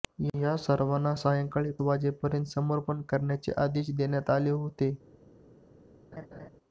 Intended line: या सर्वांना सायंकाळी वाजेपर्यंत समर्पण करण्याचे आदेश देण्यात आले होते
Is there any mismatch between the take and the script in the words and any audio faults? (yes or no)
yes